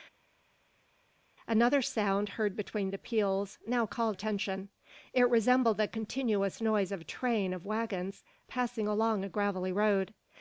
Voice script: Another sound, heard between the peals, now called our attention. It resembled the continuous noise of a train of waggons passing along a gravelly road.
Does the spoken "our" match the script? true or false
false